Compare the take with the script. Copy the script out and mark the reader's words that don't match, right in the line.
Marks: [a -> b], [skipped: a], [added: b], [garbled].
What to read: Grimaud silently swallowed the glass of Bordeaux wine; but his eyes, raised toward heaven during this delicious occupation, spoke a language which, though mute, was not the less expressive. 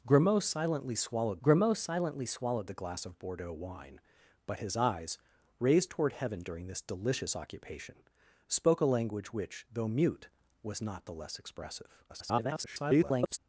Grimaud silently swallowed [added: grimaud silently swallowed] the glass of Bordeaux wine; but his eyes, raised toward heaven during this delicious occupation, spoke a language which, though mute, was not the less expressive. [garbled]